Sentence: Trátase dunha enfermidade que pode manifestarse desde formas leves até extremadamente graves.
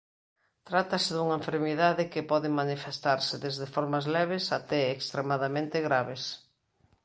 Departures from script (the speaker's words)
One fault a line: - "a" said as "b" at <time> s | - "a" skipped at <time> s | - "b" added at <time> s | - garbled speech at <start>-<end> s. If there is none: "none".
none